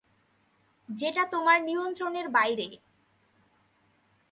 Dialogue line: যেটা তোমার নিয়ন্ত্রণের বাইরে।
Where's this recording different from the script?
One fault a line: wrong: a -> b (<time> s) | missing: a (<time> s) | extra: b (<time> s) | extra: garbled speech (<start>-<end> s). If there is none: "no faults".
no faults